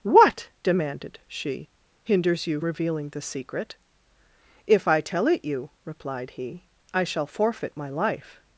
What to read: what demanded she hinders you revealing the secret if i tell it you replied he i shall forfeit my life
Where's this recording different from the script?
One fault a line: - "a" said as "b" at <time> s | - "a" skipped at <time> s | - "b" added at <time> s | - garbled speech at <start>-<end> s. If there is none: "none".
none